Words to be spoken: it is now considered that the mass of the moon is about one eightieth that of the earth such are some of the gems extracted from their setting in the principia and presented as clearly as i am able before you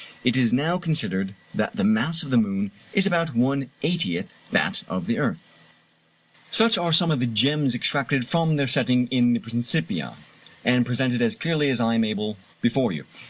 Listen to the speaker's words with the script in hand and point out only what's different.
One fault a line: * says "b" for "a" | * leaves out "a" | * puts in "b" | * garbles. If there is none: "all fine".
all fine